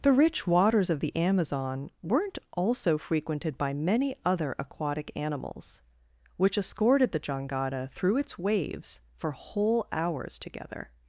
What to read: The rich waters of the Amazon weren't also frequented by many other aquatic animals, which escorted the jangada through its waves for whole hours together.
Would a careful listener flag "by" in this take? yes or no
no